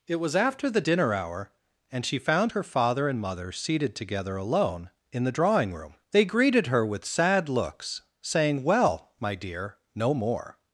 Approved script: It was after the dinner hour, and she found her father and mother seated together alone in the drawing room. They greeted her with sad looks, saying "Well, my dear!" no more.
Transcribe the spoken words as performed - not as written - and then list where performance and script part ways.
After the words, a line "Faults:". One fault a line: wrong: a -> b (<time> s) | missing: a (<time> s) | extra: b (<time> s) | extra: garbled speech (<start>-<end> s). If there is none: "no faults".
It was after the dinner hour, and she found her father and mother seated together alone in the drawing room. They greeted her with sad looks, saying "Well, my dear!" no more.
Faults:
no faults